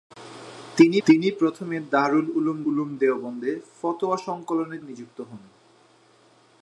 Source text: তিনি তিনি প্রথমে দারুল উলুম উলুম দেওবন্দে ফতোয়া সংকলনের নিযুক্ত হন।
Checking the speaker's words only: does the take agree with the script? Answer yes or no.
yes